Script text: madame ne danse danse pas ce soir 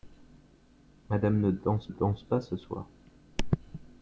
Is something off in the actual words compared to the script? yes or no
no